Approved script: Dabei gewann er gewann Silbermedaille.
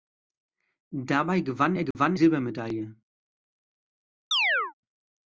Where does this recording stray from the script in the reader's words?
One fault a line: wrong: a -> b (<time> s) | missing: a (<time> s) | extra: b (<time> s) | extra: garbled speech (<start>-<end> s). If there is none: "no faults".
no faults